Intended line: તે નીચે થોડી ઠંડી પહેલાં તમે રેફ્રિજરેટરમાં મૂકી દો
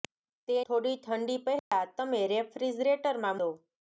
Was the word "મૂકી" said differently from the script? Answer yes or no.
yes